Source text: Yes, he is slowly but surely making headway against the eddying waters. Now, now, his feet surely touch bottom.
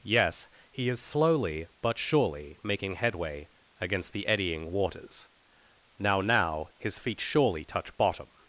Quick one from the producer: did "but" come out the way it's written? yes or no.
yes